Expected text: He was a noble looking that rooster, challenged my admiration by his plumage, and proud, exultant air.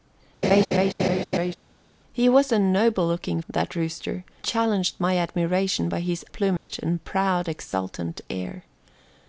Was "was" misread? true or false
false